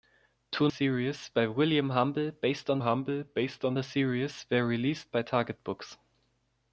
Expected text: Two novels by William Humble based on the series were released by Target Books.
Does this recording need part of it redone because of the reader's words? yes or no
yes